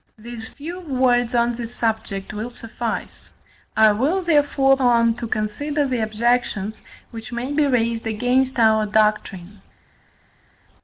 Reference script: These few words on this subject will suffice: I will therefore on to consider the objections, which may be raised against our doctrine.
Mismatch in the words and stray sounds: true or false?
false